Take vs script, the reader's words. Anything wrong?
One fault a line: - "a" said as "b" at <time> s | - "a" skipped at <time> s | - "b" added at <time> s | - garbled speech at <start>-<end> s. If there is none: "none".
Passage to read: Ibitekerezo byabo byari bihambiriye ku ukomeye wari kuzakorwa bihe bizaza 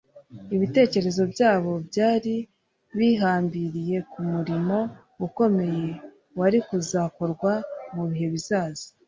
- "murimo" added at 4.3 s
- "mu" added at 7.9 s